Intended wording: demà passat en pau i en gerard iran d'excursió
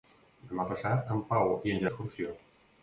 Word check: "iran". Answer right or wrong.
wrong